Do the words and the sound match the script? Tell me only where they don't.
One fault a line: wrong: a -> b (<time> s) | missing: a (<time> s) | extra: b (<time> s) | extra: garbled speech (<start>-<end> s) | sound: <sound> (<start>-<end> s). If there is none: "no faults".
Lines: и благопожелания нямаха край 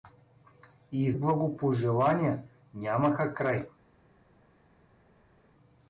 no faults